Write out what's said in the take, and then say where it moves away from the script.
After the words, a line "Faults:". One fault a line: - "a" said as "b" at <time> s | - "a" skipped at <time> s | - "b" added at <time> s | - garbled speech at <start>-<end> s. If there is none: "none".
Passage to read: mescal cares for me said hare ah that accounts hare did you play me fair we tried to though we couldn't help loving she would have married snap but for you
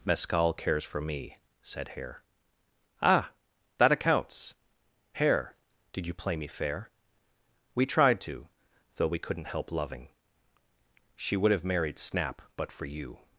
mescal cares for me said hare ah that accounts hare did you play me fair we tried to though we couldn't help loving she would have married snap but for you
Faults:
none